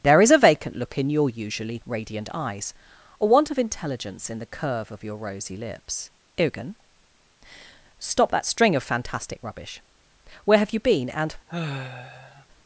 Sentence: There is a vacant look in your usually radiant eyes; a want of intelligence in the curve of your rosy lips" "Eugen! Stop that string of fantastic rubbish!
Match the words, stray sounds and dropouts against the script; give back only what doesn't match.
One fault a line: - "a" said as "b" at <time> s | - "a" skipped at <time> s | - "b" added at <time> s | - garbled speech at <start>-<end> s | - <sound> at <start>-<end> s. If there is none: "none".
- "Where have you been and" added at 10.4 s
- sigh at 11.5-12.5 s